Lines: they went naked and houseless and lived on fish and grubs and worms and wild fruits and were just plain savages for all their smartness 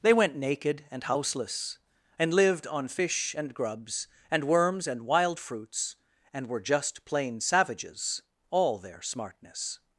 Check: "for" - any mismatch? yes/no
yes